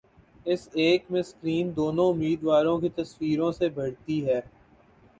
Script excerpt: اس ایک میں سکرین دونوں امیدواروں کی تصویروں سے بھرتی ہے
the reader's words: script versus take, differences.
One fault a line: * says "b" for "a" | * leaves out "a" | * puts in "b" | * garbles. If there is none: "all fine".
all fine